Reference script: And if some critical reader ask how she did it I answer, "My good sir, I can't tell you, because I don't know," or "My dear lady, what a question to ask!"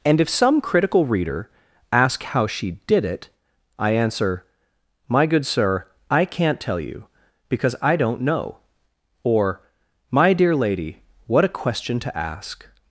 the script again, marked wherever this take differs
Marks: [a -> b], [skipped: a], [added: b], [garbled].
And if some critical reader ask how she did it I answer, "My good sir, I can't tell you, because I don't know," or "My dear lady, what a question to ask!"